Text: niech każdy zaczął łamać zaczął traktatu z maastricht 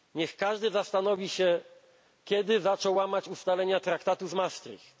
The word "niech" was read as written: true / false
true